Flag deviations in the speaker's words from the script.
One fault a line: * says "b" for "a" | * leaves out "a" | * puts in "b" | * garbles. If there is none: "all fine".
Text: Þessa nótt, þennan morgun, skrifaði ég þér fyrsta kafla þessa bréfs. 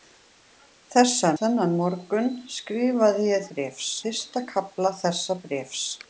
* leaves out "nótt"
* says "bréfs" for "þér"